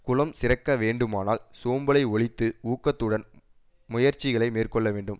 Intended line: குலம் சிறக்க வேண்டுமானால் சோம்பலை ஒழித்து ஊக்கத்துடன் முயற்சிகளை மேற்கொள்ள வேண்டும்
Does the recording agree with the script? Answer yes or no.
yes